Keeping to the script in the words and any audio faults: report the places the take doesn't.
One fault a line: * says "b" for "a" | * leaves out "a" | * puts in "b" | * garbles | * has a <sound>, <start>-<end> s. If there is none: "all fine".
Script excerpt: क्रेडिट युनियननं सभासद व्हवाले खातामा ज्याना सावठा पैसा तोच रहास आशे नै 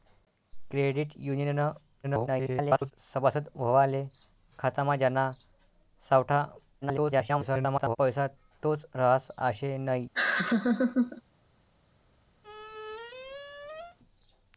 * garbles
* garbles
* has a laugh, 10.1-11.2 s
* has a squeak, 12.4-14.0 s